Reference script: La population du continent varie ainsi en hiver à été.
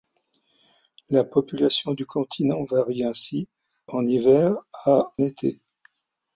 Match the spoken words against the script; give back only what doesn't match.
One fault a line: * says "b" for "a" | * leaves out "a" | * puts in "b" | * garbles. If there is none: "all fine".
all fine